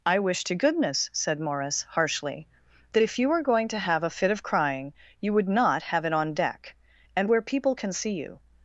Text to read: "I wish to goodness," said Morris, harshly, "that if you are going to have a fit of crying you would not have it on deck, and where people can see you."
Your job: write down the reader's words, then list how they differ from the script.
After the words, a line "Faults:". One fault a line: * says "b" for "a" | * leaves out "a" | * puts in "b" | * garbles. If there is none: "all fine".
"I wish to goodness," said Morris, harshly, "that if you were going to have a fit of crying you would not have it on deck, and where people can see you."
Faults:
* says "were" for "are"